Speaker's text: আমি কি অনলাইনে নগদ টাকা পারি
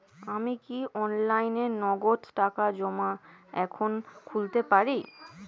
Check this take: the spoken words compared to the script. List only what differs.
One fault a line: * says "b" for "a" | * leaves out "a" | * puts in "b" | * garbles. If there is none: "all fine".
* puts in "জমা এখন খুলতে"